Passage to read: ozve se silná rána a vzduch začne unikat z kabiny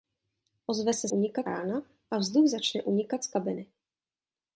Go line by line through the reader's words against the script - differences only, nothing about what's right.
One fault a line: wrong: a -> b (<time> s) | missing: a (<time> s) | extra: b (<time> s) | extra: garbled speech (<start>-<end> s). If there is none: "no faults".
wrong: silná -> unikat (1.1 s)